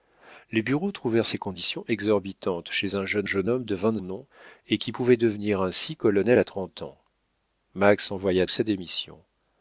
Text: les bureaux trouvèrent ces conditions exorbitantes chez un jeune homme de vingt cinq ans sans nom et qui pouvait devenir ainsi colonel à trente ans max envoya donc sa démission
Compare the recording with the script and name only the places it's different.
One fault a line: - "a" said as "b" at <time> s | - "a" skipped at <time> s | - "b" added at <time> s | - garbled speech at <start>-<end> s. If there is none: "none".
- "jeune" added at 3.2 s
- "cinq ans sans" skipped at 4.0 s
- "donc" skipped at 8.5 s